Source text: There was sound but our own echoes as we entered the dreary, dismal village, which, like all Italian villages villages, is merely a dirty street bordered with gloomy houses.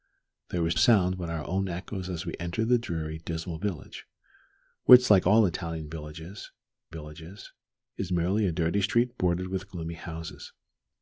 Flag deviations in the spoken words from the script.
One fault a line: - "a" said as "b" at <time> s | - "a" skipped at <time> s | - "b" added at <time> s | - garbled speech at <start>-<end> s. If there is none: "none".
none